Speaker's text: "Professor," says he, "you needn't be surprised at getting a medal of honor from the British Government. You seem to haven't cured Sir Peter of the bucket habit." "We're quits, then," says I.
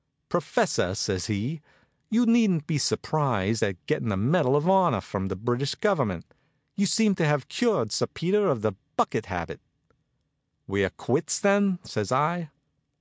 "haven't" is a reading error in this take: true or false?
true